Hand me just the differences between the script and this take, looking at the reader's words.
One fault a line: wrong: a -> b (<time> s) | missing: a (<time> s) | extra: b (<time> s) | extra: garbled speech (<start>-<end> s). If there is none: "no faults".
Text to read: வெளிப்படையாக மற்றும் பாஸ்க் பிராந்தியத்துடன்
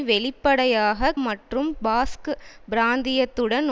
no faults